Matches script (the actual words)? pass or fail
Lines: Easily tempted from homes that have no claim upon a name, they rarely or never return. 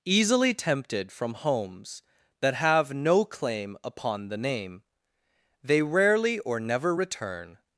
fail